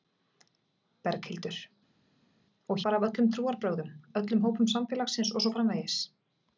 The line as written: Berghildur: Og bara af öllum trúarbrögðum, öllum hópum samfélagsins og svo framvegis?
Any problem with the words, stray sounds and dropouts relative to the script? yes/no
no